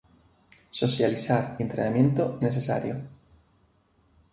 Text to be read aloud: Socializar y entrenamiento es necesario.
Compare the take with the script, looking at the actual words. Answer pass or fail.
fail